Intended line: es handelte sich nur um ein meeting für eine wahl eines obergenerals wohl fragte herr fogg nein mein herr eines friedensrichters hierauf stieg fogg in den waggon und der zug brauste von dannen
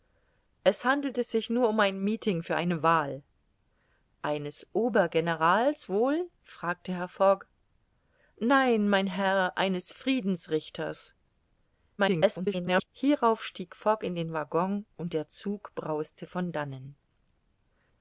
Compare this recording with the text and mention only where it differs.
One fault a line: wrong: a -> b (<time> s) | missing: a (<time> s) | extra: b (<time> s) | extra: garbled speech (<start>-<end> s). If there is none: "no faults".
extra: garbled speech (12.0-12.9 s)